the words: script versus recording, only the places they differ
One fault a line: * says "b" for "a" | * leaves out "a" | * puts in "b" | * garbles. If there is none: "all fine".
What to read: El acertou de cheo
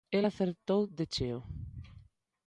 all fine